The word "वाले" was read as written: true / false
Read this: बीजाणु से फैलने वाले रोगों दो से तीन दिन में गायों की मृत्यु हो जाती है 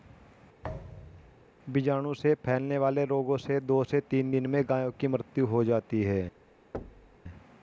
true